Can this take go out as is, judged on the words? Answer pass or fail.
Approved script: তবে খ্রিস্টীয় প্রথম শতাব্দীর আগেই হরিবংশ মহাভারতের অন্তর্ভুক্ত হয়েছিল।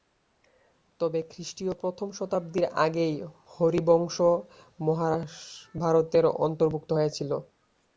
pass